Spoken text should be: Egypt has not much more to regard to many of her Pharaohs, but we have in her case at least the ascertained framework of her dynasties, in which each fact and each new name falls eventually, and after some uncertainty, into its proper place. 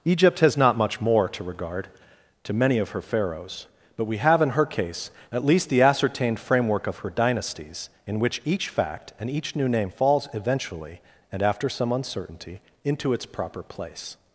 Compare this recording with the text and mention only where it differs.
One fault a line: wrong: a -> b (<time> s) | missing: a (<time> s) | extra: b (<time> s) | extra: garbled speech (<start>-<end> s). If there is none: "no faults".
no faults